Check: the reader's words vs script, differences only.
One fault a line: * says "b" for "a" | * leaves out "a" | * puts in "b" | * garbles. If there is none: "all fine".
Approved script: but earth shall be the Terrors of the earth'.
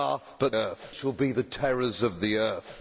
all fine